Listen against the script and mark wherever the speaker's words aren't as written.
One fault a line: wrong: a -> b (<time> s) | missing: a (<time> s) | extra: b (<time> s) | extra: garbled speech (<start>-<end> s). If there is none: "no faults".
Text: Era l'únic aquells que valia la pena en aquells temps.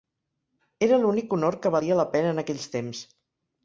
wrong: aquells -> honor (1.4 s)